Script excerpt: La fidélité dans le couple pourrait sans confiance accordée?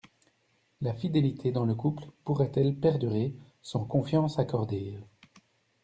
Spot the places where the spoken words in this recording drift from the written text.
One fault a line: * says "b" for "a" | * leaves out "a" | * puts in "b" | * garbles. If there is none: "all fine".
* puts in "elle perdurer"